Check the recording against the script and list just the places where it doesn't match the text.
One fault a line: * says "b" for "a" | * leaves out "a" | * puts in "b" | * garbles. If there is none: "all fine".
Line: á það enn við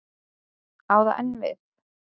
all fine